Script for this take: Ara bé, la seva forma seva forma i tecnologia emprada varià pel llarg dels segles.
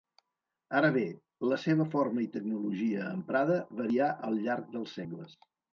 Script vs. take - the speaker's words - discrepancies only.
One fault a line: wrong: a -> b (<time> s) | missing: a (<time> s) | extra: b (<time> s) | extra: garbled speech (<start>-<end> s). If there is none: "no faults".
missing: seva forma (2.2 s)
wrong: pel -> al (4.3 s)